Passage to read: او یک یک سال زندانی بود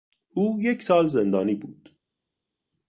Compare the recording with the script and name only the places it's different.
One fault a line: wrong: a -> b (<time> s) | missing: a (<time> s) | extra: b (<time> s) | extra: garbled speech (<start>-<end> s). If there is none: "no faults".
missing: یک (0.8 s)